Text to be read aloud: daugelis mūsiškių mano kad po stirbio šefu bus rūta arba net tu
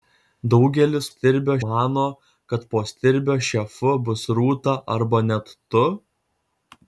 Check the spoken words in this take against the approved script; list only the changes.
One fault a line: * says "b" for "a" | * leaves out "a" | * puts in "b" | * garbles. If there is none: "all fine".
* says "stirbio" for "mūsiškių"